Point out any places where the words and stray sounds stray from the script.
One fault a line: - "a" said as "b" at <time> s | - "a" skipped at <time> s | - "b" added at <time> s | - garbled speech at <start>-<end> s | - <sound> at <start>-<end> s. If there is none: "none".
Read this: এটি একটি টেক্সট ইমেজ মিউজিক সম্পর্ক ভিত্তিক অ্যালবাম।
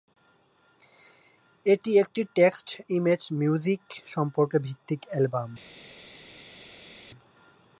none